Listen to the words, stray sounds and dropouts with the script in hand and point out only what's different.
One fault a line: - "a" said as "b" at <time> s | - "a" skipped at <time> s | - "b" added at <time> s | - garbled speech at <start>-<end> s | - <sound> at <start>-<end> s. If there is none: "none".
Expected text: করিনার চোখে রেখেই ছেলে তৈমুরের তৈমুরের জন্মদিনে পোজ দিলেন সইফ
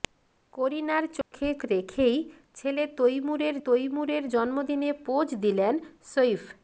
- dropout at 1.2-1.3 s